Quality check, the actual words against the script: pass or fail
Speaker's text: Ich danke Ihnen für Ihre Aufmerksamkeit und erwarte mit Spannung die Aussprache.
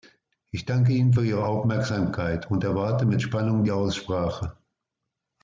pass